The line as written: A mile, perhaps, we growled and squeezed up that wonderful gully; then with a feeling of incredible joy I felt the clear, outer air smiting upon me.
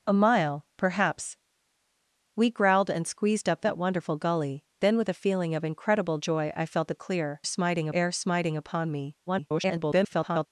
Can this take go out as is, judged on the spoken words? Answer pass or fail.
fail